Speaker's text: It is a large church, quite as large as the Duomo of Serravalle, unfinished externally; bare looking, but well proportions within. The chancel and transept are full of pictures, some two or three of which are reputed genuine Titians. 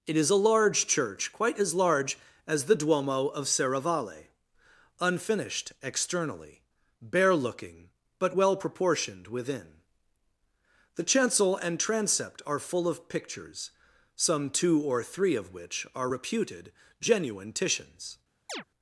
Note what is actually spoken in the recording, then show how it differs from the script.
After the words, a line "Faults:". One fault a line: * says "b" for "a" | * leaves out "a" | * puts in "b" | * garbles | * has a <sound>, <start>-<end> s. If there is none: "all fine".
It is a large church, quite as large as the Duomo of Serravalle, unfinished externally; bare looking, but well proportioned within. The chancel and transept are full of pictures, some two or three of which are reputed genuine Titians.
Faults:
* says "proportioned" for "proportions"
* has a chirp, 18.5-18.6 s